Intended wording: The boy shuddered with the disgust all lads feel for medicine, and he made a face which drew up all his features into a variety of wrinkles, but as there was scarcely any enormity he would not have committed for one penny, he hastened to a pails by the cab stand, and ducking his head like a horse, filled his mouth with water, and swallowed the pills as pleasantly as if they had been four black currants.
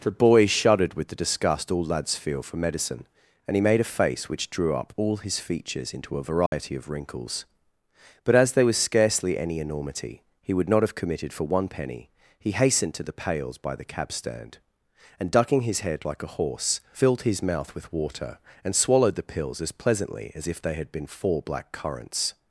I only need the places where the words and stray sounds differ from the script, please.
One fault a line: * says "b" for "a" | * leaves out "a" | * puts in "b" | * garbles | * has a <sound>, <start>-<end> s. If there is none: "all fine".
* has a dropout, 6.5-6.5 s
* says "the" for "a"